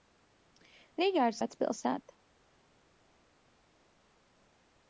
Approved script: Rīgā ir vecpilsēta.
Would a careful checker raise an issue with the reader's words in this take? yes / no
no